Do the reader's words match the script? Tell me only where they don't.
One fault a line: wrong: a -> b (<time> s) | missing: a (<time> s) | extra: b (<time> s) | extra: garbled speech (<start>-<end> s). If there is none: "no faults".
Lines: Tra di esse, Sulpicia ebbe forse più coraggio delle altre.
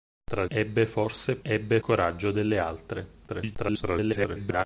missing: di esse Sulpicia (0.5 s)
wrong: più -> ebbe (1.4 s)
extra: garbled speech (3.3-4.6 s)